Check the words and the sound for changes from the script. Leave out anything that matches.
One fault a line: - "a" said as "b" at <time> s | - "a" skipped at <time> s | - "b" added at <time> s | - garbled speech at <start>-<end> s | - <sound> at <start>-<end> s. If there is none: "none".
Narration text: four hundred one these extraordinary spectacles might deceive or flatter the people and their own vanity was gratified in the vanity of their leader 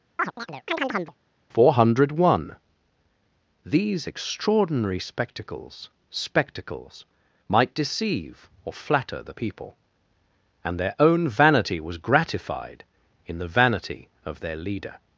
- chirp at 0.2-1.2 s
- "spectacles" added at 6.1 s